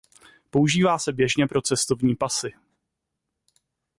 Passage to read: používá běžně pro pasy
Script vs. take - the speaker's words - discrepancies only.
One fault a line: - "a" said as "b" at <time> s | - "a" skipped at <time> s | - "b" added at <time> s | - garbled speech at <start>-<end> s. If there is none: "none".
- "se" added at 1.0 s
- "cestovní" added at 1.6 s